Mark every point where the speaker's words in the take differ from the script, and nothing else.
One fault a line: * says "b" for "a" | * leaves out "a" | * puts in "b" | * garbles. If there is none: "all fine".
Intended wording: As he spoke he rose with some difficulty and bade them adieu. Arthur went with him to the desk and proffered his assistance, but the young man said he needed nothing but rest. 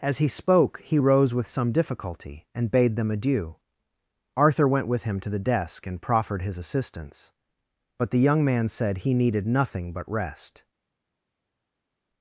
all fine